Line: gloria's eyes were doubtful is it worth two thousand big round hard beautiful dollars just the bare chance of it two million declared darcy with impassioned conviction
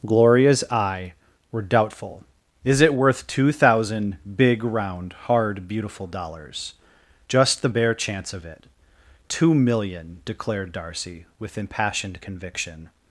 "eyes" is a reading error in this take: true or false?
true